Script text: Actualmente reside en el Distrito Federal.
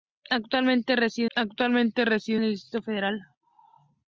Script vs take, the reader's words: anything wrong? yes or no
yes